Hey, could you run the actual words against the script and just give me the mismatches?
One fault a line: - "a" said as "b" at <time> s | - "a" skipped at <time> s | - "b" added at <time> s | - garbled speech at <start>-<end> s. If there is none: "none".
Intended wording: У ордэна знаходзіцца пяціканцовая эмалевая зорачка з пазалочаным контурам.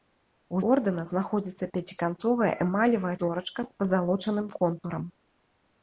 none